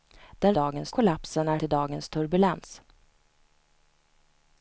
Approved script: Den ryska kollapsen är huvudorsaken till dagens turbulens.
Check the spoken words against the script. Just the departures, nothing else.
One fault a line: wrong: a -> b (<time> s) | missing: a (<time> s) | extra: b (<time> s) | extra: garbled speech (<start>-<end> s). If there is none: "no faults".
wrong: ryska -> dagens (0.5 s)
missing: huvudorsaken (1.6 s)